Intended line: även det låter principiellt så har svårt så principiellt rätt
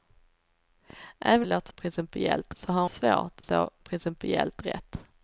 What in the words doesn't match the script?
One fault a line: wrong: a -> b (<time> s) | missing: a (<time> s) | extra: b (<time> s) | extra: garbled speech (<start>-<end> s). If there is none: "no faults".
no faults